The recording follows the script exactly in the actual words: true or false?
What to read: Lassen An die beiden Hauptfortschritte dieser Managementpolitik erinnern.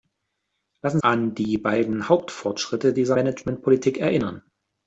true